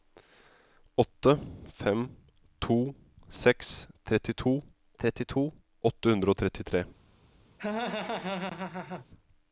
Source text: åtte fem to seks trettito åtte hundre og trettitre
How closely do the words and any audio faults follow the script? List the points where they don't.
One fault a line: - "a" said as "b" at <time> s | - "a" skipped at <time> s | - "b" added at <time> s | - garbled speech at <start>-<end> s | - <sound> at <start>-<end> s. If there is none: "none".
- "trettito" added at 5.0 s
- laugh at 7.6-9.1 s